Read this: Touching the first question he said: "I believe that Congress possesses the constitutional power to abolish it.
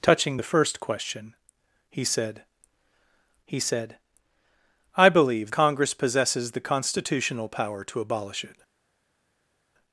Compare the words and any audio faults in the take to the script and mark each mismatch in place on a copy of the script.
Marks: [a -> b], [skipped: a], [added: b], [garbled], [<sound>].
Touching the first question he said: [added: he said] "I believe [skipped: that] Congress possesses the constitutional power to abolish it.